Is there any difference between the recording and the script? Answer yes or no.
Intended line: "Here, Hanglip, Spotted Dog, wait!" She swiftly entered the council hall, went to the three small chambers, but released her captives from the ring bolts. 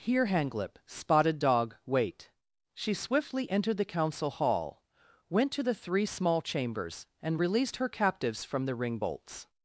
yes